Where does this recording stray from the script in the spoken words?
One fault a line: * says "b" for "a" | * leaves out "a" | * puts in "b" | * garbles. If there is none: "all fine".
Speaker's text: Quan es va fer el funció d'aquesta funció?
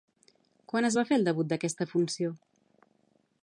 * says "debut" for "funció"